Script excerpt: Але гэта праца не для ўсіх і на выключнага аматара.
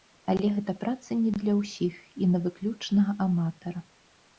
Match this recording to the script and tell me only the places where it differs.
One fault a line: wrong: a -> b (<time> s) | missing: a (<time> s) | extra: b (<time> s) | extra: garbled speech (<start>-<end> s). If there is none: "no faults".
no faults